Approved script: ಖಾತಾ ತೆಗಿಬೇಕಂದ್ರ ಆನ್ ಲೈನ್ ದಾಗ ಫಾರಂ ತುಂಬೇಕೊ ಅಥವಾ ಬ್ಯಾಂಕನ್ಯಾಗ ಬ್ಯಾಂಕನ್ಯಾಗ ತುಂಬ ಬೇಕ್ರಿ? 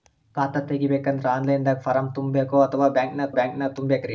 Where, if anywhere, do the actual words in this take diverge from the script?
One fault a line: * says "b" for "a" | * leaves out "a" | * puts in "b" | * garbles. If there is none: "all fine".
all fine